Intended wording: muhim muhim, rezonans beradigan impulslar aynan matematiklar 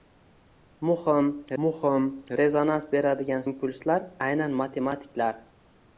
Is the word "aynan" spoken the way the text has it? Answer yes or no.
yes